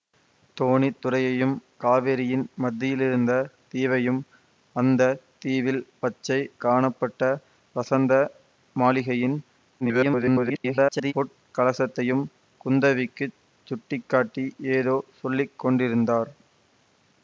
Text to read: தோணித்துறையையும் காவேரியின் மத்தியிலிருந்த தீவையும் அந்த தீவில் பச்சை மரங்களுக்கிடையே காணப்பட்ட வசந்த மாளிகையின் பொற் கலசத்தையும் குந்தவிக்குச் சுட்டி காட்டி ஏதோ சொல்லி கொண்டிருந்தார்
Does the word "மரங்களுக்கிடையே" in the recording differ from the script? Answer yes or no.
yes